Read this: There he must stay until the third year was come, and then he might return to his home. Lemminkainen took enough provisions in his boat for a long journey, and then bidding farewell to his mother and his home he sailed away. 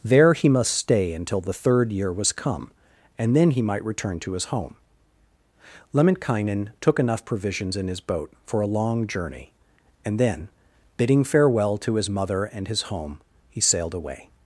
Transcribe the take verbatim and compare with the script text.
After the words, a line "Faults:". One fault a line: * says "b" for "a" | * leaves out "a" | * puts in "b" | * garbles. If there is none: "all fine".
There he must stay until the third year was come, and then he might return to his home. Lemminkainen took enough provisions in his boat for a long journey, and then bidding farewell to his mother and his home he sailed away.
Faults:
all fine